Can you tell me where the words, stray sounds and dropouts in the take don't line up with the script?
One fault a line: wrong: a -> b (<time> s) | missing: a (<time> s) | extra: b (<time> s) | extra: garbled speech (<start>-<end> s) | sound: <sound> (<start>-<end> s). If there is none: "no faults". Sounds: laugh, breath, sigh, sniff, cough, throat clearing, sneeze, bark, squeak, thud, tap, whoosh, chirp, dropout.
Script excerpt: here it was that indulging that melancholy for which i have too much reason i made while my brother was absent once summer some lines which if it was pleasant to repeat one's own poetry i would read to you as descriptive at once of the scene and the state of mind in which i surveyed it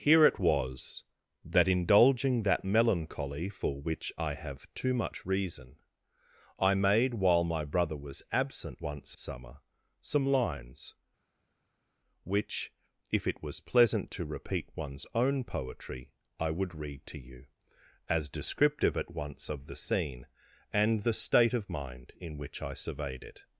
no faults